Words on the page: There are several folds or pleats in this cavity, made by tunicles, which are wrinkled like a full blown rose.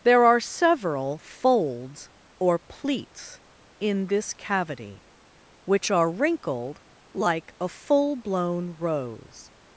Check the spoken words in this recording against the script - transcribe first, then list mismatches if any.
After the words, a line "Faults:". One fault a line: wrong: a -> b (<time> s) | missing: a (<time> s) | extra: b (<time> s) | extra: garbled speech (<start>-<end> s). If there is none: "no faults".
There are several folds or pleats in this cavity, which are wrinkled like a full blown rose.
Faults:
missing: made by tunicles (5.0 s)